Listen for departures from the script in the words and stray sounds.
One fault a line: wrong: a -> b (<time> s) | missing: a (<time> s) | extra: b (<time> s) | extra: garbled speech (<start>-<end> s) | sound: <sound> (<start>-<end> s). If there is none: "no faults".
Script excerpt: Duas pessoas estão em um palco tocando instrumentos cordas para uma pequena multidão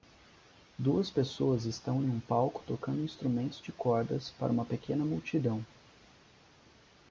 extra: de (3.6 s)